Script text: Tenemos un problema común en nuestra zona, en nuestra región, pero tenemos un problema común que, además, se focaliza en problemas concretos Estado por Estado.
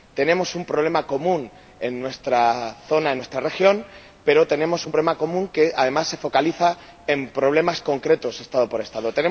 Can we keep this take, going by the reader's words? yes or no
yes